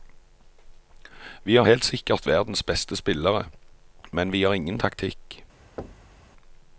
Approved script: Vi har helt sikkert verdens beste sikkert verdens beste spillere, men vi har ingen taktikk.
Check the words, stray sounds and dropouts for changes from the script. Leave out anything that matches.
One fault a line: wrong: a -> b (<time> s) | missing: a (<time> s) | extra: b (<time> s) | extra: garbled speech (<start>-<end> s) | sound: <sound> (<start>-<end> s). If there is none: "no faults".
missing: sikkert verdens beste (3.0 s)
sound: thud (5.8-6.2 s)